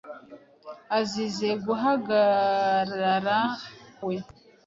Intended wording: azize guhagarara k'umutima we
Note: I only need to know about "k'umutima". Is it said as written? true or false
false